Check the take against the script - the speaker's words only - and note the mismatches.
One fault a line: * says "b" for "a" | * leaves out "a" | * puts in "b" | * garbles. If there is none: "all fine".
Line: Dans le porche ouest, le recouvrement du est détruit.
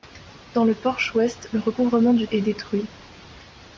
all fine